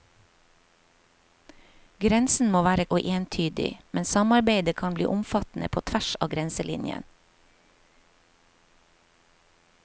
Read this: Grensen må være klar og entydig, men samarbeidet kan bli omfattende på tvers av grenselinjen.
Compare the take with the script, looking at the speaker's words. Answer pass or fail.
fail